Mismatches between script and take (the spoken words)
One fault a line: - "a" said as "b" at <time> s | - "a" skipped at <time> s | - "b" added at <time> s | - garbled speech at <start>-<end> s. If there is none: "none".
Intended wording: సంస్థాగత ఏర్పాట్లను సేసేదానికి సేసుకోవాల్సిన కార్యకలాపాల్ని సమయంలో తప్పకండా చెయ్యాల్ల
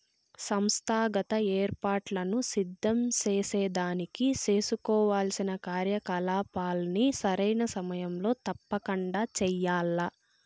- "సిద్ధం" added at 2.5 s
- "సరైన" added at 7.2 s